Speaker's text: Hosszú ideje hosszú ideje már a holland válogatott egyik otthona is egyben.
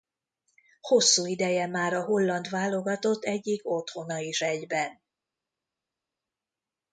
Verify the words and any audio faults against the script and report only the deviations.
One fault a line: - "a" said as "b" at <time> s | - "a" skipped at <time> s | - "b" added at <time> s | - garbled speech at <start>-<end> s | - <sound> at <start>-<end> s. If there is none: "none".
- "hosszú ideje" skipped at 1.7 s